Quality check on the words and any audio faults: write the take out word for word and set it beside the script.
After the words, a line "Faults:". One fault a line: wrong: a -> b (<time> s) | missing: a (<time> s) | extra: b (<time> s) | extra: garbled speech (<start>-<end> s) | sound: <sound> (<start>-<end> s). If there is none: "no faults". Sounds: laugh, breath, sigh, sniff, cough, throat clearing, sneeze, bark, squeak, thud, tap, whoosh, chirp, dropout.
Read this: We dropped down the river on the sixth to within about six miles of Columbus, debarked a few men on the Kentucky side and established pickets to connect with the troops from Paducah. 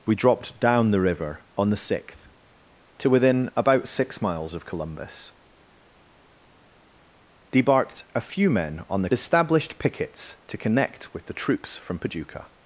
We dropped down the river on the sixth to within about six miles of Columbus, debarked a few men on the Established pickets to connect with the troops from Paducah.
Faults:
missing: Kentucky side and (9.1 s)